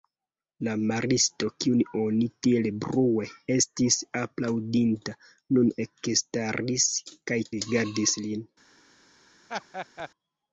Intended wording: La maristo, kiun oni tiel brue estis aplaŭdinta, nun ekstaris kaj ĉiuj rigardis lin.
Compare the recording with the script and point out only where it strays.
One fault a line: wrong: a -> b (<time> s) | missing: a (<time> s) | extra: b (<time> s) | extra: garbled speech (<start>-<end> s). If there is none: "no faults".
missing: ĉiuj (7.4 s)